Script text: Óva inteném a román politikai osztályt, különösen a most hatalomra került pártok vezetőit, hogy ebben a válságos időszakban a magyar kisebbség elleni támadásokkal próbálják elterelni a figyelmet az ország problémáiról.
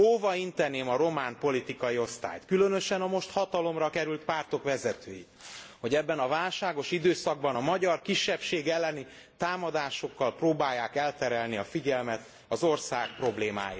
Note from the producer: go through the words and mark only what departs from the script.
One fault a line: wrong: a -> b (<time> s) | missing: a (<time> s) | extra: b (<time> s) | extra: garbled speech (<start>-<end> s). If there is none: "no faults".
no faults